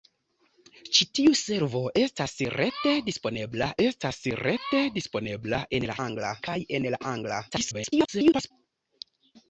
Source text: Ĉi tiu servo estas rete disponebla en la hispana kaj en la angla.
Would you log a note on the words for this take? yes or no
yes